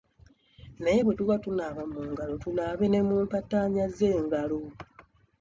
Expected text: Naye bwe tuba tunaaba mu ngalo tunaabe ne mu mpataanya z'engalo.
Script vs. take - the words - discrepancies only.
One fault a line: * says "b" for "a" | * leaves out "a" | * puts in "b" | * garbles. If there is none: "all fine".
all fine